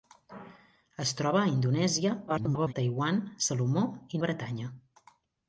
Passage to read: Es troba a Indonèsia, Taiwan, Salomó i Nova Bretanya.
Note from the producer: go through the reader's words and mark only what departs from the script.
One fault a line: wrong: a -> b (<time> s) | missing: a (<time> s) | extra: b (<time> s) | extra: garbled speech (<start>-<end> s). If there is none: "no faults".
extra: garbled speech (2.3-2.7 s)
missing: Nova (4.2 s)